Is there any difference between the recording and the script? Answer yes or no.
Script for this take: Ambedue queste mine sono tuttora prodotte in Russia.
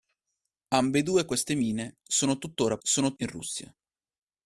yes